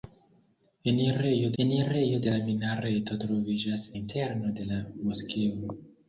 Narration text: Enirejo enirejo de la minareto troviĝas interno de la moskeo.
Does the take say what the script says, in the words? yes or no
yes